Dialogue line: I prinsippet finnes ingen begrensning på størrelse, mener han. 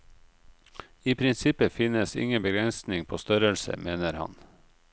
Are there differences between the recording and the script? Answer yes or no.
no